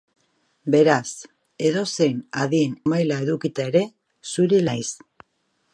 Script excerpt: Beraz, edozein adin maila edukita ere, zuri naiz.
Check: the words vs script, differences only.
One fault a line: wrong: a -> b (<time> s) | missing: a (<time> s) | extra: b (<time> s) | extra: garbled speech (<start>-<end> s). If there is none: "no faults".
no faults